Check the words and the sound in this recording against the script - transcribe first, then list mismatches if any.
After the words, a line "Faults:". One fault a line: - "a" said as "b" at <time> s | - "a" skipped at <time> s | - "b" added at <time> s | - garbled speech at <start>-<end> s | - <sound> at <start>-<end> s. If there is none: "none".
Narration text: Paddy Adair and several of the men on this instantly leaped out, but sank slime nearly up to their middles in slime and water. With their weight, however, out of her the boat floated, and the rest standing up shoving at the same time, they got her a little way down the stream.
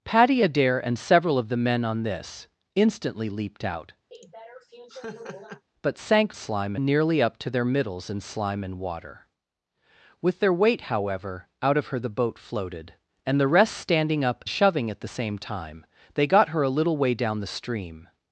Paddy Adair and several of the men on this instantly leaped out, but sank slime nearly up to their middles in slime and water. With their weight, however, out of her the boat floated, and the rest standing up shoving at the same time, they got her a little way down the stream.
Faults:
- laugh at 4.1-5.6 s